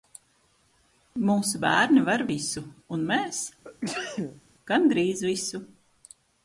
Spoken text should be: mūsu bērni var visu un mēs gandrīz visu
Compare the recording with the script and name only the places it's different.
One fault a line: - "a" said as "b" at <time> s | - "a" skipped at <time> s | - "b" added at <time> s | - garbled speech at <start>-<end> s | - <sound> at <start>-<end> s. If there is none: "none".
- sneeze at 3.6-4.4 s